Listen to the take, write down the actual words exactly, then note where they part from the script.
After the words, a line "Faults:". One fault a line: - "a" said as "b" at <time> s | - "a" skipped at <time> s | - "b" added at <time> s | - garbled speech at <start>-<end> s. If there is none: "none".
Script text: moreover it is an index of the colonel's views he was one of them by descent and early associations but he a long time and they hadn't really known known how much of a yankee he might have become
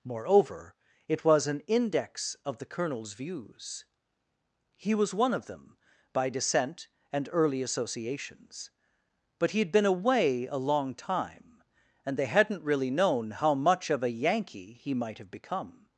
moreover it was an index of the colonel's views he was one of them by descent and early associations but he had been away a long time and they hadn't really known how much of a yankee he might have become
Faults:
- "is" said as "was" at 1.2 s
- "had been away" added at 9.6 s
- "known" skipped at 13.3 s